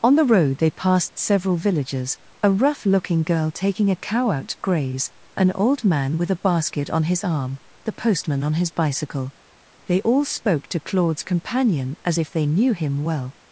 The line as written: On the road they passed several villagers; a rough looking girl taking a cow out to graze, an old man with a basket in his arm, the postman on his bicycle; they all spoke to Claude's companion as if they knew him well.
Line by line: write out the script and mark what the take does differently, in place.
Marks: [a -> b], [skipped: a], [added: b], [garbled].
On the road they passed several villagers; a rough looking girl taking a cow out to graze, an old man with a basket [in -> on] his arm, the postman on his bicycle; they all spoke to Claude's companion as if they knew him well.